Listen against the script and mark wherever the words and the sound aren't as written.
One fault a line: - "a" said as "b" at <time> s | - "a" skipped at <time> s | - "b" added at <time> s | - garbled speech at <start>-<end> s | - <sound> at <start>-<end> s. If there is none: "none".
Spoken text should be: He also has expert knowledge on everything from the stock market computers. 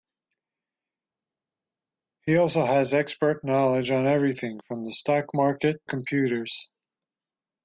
none